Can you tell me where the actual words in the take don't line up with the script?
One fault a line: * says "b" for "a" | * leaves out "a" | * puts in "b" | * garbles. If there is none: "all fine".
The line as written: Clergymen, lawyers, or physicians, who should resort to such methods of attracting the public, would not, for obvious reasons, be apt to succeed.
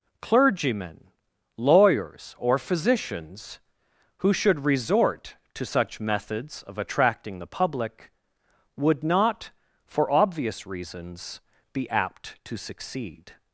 all fine